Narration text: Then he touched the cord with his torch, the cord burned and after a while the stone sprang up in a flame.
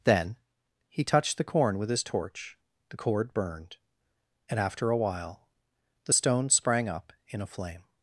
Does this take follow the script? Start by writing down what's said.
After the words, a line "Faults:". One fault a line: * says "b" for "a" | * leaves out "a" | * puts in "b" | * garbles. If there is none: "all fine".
Then he touched the corn with his torch, the cord burned and after a while the stone sprang up in a flame.
Faults:
* says "corn" for "cord"